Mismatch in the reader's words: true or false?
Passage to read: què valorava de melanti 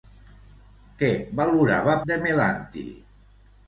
false